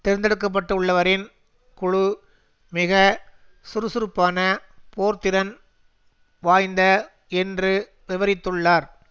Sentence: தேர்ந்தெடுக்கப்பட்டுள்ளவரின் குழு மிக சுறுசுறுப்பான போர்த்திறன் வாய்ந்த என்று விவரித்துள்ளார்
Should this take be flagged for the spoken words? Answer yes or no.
no